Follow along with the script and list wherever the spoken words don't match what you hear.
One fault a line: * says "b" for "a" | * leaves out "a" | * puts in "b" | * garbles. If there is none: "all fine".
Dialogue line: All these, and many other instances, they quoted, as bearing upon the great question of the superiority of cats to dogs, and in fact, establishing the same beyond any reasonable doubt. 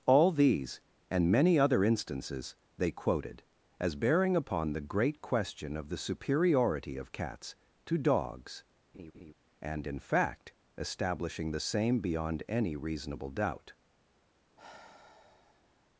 all fine